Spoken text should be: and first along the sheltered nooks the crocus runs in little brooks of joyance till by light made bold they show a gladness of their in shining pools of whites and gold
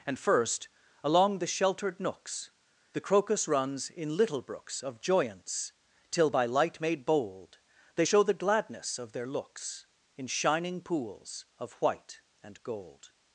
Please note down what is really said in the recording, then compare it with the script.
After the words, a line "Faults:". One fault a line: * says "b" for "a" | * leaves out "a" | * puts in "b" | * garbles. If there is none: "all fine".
and first along the sheltered nooks the crocus runs in little brooks of joyance till by light made bold they show the gladness of their looks in shining pools of white and gold
Faults:
* says "the" for "a"
* puts in "looks"
* says "white" for "whites"